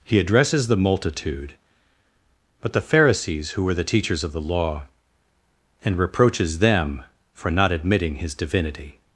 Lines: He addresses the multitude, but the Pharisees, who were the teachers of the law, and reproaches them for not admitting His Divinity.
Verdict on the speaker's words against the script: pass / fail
pass